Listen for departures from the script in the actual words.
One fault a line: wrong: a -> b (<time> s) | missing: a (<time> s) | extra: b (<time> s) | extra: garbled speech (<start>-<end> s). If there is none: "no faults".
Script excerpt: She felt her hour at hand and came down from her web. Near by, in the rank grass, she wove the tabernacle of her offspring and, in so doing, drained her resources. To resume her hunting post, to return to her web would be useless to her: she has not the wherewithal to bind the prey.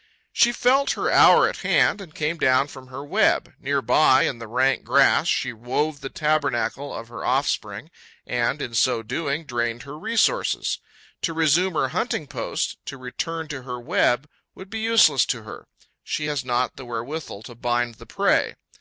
no faults